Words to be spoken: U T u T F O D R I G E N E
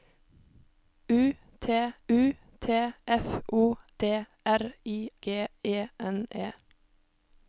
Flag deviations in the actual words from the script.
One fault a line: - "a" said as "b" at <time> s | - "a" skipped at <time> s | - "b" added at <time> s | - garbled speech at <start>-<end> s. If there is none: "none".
none